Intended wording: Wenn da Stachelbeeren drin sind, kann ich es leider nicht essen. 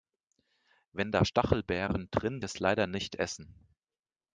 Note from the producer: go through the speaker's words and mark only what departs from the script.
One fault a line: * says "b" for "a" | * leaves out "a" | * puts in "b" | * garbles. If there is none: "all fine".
* leaves out "sind kann ich"